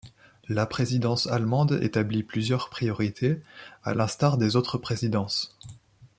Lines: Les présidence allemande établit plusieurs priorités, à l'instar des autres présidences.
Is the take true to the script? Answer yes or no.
no